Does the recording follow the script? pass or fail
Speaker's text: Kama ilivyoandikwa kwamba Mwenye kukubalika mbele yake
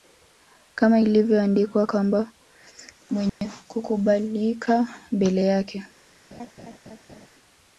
pass